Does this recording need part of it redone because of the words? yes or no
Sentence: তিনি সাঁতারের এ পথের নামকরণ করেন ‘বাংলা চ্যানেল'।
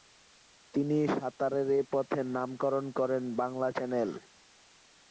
no